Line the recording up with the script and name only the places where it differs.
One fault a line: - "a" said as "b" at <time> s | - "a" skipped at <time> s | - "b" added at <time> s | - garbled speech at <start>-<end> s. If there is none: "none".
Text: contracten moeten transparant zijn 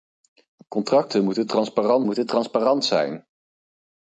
- "moeten transparant" added at 2.0 s